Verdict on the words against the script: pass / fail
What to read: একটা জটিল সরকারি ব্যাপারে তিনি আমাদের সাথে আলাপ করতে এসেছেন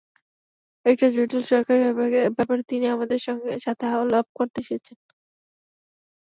pass